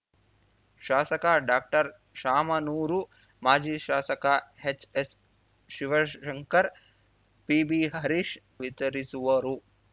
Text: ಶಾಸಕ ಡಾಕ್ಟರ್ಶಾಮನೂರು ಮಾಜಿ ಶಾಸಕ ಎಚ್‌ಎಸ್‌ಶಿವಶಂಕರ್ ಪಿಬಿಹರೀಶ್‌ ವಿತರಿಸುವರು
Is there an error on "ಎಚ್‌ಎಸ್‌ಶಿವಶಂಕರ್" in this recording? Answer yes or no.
no